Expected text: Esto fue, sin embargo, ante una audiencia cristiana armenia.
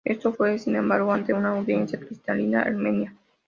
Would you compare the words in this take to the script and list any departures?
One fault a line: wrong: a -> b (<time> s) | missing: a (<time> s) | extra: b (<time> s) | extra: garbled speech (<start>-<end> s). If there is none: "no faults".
no faults